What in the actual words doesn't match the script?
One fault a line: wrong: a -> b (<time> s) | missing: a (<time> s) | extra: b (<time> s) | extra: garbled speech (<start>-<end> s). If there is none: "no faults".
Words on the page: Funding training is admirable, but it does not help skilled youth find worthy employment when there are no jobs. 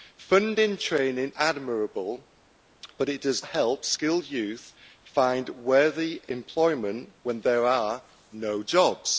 missing: is (1.3 s)
missing: not (3.4 s)